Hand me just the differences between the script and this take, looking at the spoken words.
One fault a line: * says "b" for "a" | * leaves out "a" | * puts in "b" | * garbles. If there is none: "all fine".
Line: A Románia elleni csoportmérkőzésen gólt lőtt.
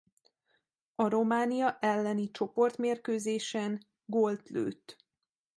all fine